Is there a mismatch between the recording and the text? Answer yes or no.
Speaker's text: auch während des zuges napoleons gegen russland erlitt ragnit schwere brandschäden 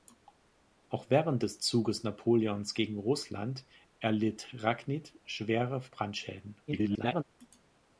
yes